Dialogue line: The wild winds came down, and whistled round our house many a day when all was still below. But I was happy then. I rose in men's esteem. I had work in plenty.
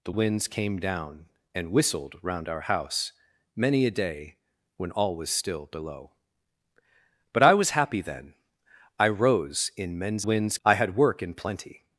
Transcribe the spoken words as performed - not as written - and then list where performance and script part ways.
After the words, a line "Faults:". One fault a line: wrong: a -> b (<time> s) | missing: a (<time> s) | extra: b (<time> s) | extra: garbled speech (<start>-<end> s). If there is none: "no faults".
The winds came down, and whistled round our house many a day when all was still below. But I was happy then. I rose in men's winds. I had work in plenty.
Faults:
missing: wild (0.1 s)
wrong: esteem -> winds (10.2 s)